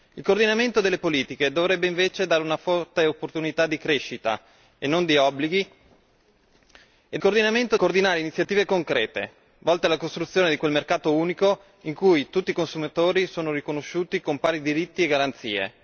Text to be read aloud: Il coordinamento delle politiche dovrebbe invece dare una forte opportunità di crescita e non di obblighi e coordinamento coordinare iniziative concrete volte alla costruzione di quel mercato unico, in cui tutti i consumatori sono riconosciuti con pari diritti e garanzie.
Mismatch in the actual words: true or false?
false